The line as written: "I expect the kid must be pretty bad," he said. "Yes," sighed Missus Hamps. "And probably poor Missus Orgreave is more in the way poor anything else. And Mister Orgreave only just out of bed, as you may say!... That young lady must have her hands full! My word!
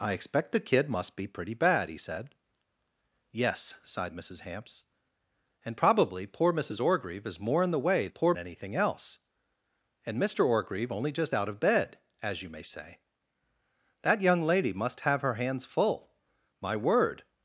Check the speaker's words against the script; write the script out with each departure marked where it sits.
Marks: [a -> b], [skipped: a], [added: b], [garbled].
"I expect the kid must be pretty bad," he said. "Yes," sighed Missus Hamps. "And probably poor Missus Orgreave is more in the way poor anything else. And Mister Orgreave only just out of bed, as you may say!... That young lady must have her hands full! My word!